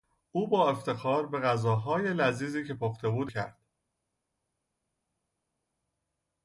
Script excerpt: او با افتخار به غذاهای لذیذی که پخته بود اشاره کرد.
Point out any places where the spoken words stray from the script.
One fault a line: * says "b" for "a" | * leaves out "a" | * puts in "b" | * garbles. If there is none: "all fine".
* leaves out "اشاره"